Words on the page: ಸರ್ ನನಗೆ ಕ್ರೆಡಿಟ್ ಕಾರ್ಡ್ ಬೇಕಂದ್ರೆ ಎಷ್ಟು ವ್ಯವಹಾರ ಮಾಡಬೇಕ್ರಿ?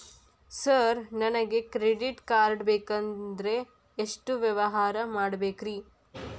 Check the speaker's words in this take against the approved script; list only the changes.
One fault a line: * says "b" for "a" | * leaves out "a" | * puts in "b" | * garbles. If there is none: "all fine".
all fine